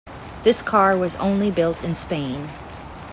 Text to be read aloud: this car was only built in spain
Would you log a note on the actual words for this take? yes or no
no